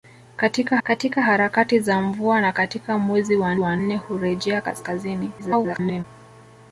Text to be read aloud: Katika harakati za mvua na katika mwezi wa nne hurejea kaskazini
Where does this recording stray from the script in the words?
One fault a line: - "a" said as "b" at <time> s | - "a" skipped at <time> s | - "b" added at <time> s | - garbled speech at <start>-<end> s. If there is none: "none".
- "katika" added at 0.8 s
- "wa" added at 3.6 s
- garbled speech at 5.4-6.0 s